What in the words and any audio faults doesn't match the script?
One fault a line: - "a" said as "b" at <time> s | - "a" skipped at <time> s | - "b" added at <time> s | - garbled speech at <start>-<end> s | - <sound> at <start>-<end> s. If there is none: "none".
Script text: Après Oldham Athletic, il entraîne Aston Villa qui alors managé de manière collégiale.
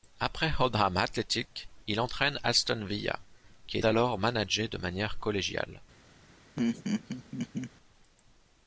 - laugh at 6.6-7.7 s